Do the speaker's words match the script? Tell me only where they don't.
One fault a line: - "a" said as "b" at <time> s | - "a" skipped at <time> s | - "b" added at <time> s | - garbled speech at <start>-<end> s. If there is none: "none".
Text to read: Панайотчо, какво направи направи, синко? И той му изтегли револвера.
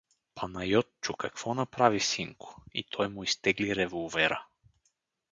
- "направи" skipped at 2.0 s